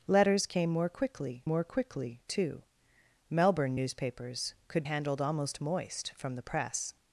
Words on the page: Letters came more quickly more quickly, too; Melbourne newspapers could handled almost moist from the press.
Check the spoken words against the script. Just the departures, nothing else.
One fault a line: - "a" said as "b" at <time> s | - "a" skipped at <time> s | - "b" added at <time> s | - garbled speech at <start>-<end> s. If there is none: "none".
none